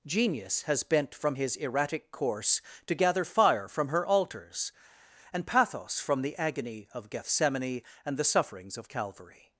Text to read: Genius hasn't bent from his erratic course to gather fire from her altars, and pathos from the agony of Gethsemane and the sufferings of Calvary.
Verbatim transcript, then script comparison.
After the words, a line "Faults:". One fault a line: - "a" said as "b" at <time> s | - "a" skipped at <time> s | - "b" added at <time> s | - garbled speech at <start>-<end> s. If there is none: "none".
Genius has bent from his erratic course to gather fire from her altars, and pathos from the agony of Gethsemane and the sufferings of Calvary.
Faults:
- "hasn't" said as "has" at 0.6 s